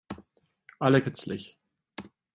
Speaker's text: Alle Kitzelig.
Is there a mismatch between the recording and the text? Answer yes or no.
no